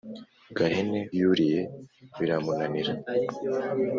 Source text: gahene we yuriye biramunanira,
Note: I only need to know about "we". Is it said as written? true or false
false